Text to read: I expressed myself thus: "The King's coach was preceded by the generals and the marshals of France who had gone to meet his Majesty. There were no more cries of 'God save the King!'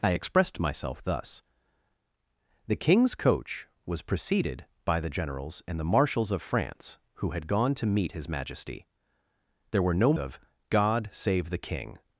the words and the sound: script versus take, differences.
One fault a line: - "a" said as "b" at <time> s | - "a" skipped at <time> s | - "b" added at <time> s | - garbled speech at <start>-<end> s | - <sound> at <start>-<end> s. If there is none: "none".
- "more cries" skipped at 10.1 s